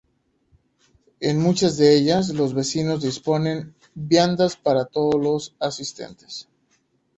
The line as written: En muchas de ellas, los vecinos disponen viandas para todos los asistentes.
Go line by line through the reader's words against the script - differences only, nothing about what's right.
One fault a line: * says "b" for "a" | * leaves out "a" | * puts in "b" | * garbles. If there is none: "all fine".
all fine